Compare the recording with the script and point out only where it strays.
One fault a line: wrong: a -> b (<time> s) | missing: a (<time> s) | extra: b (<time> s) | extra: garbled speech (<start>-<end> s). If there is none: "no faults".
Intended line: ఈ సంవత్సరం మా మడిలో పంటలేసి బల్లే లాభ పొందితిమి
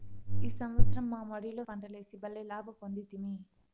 no faults